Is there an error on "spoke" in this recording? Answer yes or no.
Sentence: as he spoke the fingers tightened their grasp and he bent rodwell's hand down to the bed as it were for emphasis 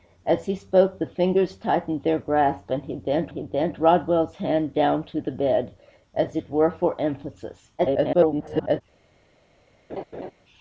no